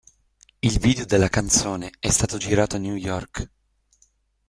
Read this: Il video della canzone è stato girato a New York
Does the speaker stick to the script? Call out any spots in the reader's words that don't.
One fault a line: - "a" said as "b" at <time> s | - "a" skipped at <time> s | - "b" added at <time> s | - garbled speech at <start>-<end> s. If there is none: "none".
none